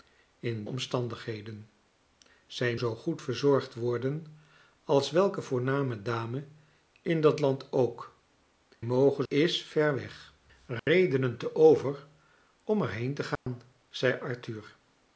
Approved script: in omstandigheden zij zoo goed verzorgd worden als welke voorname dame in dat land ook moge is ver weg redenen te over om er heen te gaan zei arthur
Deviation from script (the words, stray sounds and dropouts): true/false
true